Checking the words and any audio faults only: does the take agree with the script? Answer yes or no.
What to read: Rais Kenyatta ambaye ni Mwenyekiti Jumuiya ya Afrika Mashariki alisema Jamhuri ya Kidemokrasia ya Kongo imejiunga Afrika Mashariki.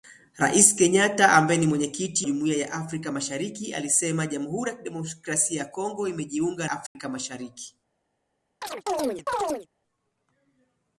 no